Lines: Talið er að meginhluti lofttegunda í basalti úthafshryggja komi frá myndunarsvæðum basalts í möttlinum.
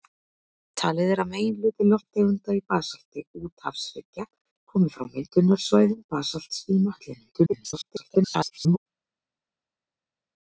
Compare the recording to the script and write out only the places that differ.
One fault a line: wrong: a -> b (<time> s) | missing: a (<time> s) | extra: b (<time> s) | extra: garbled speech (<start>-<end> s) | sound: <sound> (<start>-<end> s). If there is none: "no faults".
extra: garbled speech (7.3-8.8 s)